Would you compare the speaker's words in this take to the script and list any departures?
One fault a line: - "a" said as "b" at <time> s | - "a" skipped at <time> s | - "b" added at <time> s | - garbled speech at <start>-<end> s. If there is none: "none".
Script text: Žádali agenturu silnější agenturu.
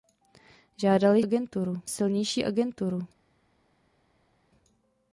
none